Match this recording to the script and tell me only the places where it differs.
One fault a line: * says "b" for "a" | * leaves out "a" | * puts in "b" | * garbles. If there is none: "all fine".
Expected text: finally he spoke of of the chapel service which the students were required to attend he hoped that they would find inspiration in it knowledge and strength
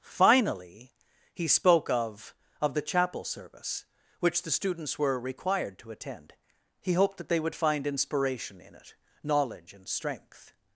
all fine